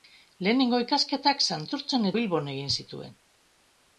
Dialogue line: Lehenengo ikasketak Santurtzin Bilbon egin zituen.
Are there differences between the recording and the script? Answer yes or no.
no